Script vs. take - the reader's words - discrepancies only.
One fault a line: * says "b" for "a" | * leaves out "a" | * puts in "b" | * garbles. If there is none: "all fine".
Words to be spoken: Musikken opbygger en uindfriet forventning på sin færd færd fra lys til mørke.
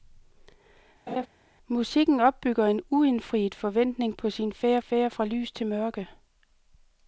all fine